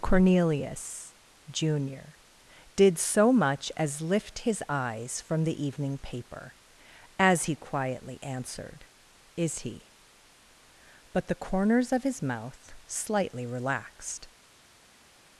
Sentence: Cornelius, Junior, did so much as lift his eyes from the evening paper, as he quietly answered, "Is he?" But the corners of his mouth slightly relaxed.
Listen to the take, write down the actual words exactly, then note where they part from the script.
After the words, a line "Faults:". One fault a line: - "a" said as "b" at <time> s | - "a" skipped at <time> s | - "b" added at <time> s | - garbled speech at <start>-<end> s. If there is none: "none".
Cornelius, Junior, did so much as lift his eyes from the evening paper, as he quietly answered, "Is he?" But the corners of his mouth slightly relaxed.
Faults:
none